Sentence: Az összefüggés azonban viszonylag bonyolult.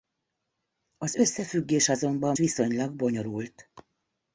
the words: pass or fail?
pass